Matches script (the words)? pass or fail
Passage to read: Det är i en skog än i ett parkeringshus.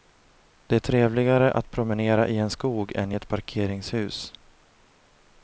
fail